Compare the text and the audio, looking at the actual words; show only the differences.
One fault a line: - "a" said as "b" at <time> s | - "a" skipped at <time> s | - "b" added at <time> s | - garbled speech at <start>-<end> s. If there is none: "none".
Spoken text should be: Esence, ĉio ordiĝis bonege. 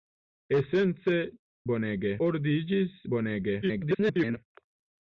- "ĉio" said as "bonege" at 1.7 s
- garbled speech at 3.6-4.4 s